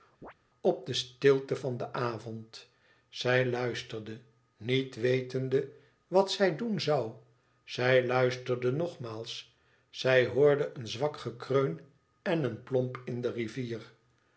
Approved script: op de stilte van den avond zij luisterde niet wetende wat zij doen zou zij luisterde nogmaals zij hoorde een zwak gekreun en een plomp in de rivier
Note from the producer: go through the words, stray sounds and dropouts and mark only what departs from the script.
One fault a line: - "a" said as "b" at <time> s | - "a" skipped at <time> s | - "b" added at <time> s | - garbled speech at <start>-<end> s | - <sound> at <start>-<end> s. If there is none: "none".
- chirp at 0.2-0.3 s